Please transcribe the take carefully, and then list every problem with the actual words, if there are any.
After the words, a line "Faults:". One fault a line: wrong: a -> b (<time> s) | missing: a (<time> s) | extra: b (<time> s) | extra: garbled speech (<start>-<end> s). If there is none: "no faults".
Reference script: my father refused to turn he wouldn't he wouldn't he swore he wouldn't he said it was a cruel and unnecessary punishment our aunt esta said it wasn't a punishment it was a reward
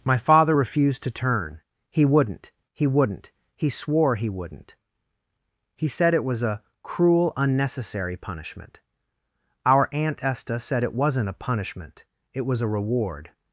my father refused to turn he wouldn't he wouldn't he swore he wouldn't he said it was a cruel unnecessary punishment our aunt esta said it wasn't a punishment it was a reward
Faults:
missing: and (7.3 s)